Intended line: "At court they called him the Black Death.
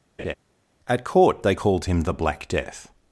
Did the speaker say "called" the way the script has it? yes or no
yes